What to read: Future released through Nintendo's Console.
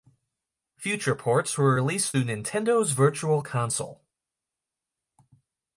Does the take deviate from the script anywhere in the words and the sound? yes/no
yes